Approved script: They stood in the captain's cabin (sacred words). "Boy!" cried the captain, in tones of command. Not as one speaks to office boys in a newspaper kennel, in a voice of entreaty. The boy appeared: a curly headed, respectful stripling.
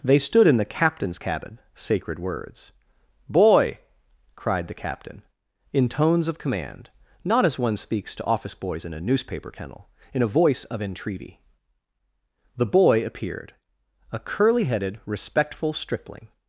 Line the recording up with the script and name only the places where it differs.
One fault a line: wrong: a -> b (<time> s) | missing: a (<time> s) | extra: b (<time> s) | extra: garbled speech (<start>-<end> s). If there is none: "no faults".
no faults